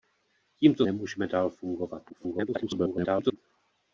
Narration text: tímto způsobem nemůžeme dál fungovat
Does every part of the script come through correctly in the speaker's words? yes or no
no